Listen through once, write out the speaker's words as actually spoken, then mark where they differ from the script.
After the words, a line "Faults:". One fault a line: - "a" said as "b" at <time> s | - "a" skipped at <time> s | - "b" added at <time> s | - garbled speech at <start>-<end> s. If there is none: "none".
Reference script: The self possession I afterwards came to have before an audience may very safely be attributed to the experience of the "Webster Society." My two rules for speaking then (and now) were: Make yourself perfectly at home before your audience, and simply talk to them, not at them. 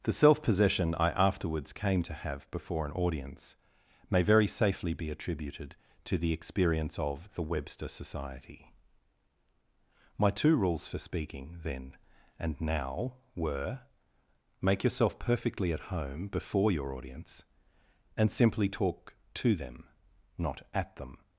The self possession I afterwards came to have before an audience may very safely be attributed to the experience of the "Webster Society." My two rules for speaking then (and now) were: Make yourself perfectly at home before your audience, and simply talk to them, not at them.
Faults:
none